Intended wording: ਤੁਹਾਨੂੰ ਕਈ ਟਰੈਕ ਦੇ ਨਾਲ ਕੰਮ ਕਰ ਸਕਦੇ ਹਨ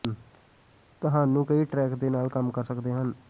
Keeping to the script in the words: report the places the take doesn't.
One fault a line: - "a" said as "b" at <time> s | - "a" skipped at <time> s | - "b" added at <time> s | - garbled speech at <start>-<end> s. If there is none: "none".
none